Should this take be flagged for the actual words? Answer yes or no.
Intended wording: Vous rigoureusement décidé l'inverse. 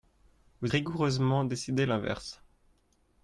no